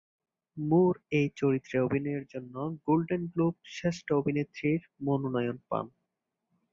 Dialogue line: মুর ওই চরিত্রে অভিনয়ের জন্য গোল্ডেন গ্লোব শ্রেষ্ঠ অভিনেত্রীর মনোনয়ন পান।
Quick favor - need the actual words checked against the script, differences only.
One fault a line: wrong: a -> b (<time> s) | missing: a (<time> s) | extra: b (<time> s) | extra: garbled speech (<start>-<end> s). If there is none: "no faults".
wrong: ওই -> এই (1.1 s)